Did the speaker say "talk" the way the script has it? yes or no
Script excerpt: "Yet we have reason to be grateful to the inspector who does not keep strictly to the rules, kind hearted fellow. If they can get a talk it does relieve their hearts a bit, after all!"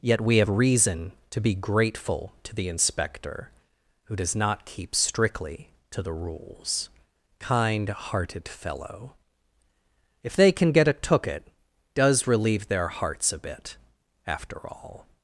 no